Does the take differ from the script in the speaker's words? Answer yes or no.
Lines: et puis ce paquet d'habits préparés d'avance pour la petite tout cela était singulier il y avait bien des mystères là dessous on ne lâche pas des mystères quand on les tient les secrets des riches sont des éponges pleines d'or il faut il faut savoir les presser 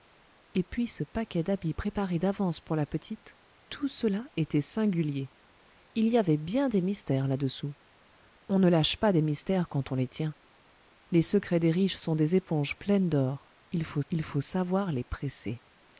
no